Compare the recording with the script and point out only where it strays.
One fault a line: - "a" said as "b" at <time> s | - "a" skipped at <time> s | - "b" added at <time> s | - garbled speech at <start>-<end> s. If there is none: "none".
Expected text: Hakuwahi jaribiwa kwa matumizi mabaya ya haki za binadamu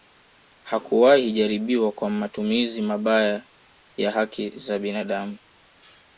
none